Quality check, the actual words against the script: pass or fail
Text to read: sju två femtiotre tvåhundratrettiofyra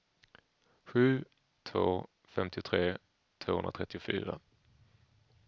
pass